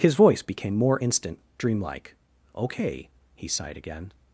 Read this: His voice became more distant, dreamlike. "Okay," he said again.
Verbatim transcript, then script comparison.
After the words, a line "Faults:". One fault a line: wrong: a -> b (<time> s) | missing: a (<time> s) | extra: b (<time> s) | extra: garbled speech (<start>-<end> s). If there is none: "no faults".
His voice became more instant, dreamlike. "Okay," he sighed again.
Faults:
wrong: distant -> instant (1.0 s)
wrong: said -> sighed (3.5 s)